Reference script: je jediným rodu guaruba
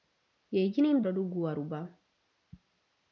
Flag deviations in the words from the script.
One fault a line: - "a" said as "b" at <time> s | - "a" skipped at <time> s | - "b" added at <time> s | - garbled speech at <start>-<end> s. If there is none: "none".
none